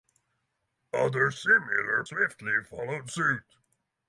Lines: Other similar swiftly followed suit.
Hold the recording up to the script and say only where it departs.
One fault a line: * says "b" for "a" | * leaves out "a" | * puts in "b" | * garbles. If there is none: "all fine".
all fine